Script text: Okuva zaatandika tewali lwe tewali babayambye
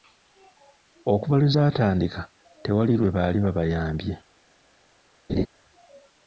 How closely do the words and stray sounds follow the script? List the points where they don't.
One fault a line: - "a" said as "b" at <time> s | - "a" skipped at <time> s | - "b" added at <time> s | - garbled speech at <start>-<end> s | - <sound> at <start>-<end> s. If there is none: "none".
- "lwe" added at 1.4 s
- "tewali" said as "baali" at 3.1 s
- laugh at 5.3-5.5 s